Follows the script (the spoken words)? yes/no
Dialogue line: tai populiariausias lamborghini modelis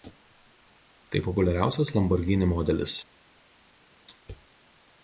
yes